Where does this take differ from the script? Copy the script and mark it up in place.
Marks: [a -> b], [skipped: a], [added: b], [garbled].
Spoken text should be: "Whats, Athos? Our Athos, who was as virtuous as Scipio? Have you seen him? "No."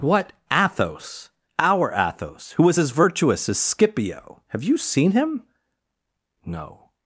["Whats, -> What] Athos? Our Athos, who was as virtuous as Scipio? Have you seen him? "No."